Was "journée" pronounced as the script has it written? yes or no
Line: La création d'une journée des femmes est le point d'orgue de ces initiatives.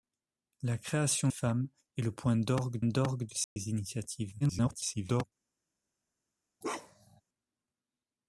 no